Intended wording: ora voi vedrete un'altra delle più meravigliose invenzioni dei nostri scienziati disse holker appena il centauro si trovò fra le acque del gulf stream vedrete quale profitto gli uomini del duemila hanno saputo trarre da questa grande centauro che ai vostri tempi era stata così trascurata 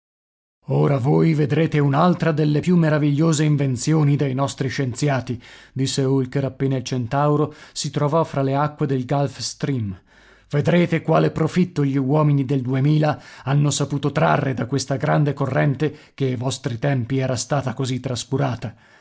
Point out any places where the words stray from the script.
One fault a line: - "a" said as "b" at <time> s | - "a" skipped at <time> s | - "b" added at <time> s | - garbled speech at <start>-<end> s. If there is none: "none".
- "centauro" said as "corrente" at 15.3 s